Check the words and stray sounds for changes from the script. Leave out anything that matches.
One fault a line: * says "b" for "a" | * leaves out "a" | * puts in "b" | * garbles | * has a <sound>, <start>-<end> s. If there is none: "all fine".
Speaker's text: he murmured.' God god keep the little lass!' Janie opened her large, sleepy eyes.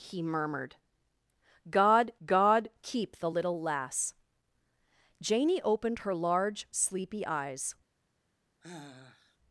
* has a sigh, 8.6-9.4 s